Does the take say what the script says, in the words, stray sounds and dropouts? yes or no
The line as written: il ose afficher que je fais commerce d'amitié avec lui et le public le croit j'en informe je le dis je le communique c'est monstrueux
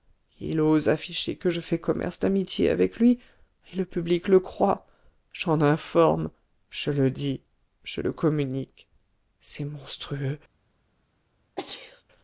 no